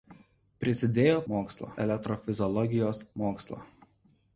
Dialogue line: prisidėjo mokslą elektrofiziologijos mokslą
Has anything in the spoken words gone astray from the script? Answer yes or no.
no